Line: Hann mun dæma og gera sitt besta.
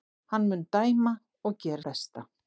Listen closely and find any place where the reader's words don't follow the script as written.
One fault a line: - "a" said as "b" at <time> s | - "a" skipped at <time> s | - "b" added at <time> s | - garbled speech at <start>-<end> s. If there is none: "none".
- "sitt" skipped at 1.8 s